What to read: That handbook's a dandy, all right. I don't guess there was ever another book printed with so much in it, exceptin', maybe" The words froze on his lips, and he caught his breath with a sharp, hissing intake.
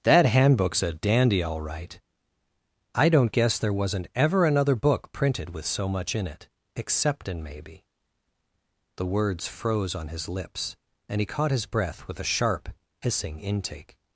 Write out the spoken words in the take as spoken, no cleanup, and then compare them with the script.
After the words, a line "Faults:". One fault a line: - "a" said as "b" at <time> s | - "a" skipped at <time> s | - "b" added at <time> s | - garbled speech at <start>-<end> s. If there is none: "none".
That handbook's a dandy, all right. I don't guess there wasn't ever another book printed with so much in it, exceptin', maybe" The words froze on his lips, and he caught his breath with a sharp, hissing intake.
Faults:
- "was" said as "wasn't" at 3.7 s